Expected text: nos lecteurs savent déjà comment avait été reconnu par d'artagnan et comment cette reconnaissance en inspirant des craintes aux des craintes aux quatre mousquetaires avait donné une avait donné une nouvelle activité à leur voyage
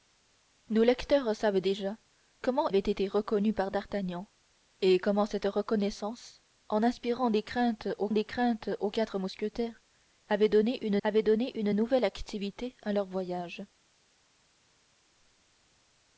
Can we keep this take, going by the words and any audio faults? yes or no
yes